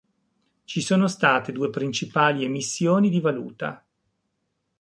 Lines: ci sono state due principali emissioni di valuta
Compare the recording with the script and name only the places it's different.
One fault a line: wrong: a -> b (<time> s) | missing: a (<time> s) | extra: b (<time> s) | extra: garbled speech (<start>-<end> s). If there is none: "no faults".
no faults